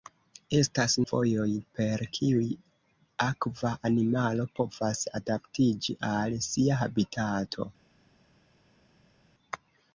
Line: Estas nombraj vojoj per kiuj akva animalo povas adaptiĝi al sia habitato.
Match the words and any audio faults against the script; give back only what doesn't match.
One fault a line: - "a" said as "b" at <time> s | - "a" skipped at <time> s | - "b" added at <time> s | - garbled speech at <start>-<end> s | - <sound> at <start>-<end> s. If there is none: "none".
- "nombraj" skipped at 0.9 s